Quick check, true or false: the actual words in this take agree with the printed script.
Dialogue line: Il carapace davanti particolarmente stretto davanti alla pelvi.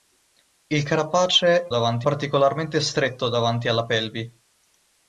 true